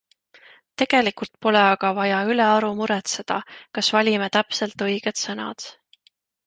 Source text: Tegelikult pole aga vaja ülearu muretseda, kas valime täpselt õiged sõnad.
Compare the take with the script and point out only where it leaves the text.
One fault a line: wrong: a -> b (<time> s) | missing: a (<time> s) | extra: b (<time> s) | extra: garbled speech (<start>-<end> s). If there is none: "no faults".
no faults